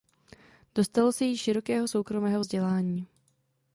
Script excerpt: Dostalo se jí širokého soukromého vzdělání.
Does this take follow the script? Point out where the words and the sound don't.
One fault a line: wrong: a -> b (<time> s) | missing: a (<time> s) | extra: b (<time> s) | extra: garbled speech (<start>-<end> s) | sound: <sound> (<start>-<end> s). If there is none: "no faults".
no faults